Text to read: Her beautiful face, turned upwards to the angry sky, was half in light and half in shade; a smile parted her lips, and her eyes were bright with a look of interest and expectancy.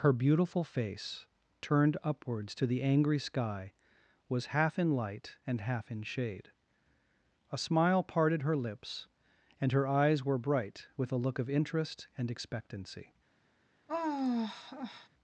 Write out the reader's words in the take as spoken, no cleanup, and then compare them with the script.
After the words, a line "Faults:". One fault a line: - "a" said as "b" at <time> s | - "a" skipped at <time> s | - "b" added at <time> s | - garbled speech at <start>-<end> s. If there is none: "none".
Her beautiful face, turned upwards to the angry sky, was half in light and half in shade; a smile parted her lips, and her eyes were bright with a look of interest and expectancy.
Faults:
none